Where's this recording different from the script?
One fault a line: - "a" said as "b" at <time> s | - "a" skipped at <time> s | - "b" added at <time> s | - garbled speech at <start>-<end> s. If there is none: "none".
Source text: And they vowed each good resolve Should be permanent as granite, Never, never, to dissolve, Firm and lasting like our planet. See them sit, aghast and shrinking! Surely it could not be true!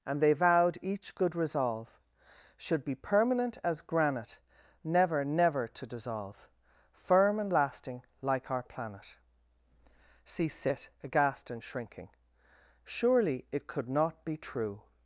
- "them" skipped at 10.5 s